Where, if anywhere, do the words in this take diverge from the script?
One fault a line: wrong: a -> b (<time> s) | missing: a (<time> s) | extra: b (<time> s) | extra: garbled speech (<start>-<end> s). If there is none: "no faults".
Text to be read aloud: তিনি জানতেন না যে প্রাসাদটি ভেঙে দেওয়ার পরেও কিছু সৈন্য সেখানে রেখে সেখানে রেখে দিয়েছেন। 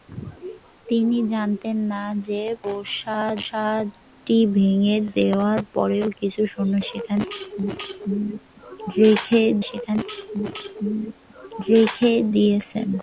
no faults